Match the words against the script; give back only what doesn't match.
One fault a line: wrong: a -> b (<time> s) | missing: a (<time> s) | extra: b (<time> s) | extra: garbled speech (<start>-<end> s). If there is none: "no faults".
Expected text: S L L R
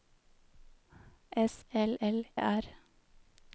no faults